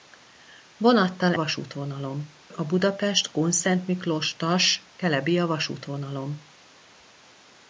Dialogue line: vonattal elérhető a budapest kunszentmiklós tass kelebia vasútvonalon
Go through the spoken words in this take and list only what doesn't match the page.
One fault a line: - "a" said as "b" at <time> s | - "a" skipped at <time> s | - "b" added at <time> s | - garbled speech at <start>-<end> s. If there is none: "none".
- "elérhető" said as "vasútvonalon" at 1.3 s